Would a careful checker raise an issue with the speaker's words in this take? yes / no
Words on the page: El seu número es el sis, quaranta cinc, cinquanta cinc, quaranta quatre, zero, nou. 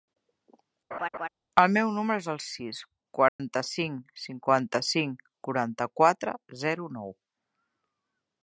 yes